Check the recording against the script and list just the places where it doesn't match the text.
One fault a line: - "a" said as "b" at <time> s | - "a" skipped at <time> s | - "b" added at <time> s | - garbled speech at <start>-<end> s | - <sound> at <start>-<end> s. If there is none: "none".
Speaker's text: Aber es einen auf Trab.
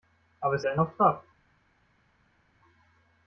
none